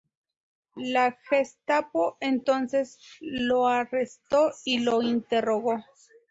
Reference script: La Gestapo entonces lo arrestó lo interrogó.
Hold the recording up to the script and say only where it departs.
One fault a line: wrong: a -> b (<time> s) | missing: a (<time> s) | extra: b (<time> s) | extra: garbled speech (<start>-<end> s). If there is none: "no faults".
extra: y (4.6 s)